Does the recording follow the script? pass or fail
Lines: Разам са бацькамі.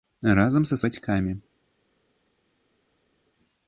pass